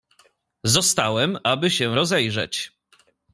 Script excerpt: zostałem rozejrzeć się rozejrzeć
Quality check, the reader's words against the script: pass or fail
fail